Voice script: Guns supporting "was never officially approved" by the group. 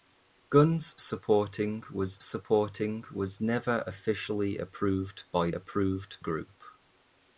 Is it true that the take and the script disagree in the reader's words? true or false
true